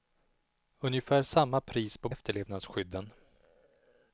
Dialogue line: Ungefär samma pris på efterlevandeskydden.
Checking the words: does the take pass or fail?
pass